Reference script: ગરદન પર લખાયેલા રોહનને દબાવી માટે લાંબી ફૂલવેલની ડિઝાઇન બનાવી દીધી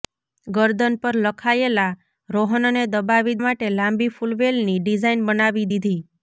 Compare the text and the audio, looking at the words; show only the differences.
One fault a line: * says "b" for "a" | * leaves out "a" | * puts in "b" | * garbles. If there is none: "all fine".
all fine